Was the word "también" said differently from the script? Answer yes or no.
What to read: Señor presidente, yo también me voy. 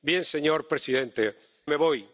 yes